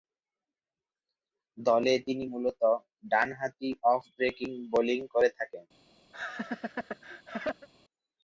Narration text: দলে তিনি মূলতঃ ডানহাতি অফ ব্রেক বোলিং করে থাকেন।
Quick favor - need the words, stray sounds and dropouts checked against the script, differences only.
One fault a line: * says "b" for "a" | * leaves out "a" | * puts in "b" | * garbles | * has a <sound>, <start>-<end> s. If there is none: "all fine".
* has a laugh, 6.1-7.7 s